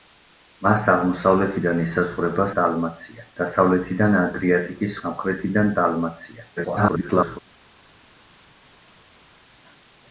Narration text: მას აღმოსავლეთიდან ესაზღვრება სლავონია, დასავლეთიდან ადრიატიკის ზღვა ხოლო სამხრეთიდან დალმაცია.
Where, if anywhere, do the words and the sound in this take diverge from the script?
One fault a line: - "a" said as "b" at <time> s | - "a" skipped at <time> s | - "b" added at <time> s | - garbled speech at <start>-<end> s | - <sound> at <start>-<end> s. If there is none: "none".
- "სლავონია" said as "დალმაცია" at 2.6 s
- "ზღვა ხოლო" skipped at 5.0 s
- garbled speech at 6.6-7.4 s